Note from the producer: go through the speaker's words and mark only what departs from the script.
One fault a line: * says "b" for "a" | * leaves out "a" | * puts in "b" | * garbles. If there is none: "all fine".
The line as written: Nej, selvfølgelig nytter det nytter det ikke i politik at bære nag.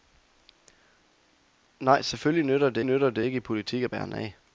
all fine